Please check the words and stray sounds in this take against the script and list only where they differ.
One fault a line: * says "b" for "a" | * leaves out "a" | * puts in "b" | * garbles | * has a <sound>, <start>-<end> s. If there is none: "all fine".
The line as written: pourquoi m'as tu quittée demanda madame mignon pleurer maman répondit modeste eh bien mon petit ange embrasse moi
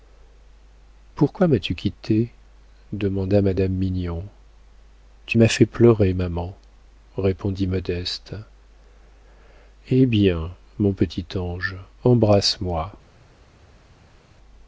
* puts in "tu m'as fait"